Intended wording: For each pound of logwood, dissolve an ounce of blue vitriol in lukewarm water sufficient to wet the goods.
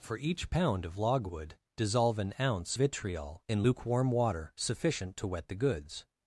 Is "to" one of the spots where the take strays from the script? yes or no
no